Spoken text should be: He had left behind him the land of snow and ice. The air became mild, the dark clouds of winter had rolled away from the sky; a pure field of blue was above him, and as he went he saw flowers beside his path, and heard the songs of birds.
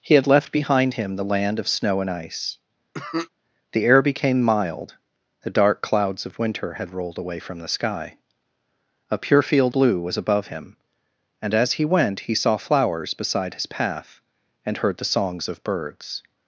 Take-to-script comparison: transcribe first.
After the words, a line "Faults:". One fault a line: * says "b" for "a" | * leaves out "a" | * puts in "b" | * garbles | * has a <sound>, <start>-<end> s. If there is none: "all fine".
He had left behind him the land of snow and ice. The air became mild, the dark clouds of winter had rolled away from the sky; a pure field blue was above him, and as he went he saw flowers beside his path, and heard the songs of birds.
Faults:
* has a cough, 2.9-3.3 s
* leaves out "of"